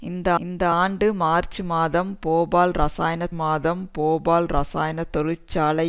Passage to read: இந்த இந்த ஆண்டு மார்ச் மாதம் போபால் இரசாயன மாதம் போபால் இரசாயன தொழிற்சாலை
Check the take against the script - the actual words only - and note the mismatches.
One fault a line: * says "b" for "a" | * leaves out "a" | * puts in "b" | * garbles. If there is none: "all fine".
all fine